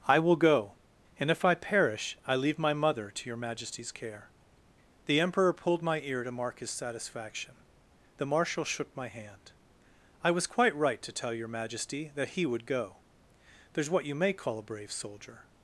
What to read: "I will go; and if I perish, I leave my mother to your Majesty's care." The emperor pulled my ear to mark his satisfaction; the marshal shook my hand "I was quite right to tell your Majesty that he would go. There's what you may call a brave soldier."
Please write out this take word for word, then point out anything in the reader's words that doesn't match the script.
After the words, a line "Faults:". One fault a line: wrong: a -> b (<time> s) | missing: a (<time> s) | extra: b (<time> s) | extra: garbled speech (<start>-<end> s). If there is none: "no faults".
"I will go; and if I perish, I leave my mother to your Majesty's care." The emperor pulled my ear to mark his satisfaction; the marshal shook my hand "I was quite right to tell your Majesty that he would go. There's what you may call a brave soldier."
Faults:
no faults